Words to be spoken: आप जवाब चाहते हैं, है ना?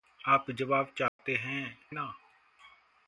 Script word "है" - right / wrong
wrong